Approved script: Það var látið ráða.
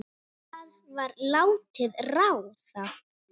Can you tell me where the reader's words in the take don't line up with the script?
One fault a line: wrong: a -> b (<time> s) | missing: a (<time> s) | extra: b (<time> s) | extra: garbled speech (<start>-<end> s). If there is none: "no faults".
no faults